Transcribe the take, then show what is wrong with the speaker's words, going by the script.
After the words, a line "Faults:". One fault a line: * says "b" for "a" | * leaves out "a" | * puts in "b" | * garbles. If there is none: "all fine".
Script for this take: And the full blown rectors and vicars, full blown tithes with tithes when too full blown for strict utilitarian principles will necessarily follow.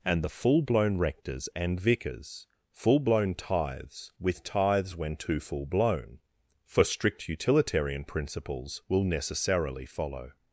And the full blown rectors and vicars, full blown tithes with tithes when too full blown for strict utilitarian principles will necessarily follow.
Faults:
all fine